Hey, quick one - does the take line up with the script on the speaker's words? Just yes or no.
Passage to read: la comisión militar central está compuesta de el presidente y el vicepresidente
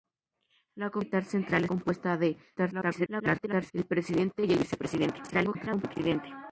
no